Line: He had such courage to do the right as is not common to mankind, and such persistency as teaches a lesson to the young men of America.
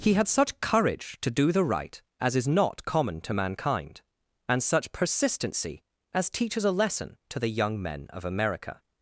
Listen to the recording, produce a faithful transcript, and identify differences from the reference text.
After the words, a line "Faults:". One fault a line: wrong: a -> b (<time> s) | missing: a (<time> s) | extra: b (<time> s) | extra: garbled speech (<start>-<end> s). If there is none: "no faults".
He had such courage to do the right as is not common to mankind, and such persistency as teaches a lesson to the young men of America.
Faults:
no faults